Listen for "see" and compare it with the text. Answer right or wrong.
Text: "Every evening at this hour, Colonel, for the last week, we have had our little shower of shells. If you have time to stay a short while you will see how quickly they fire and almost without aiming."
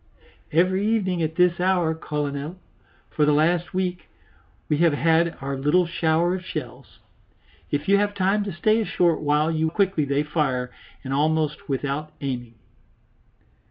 wrong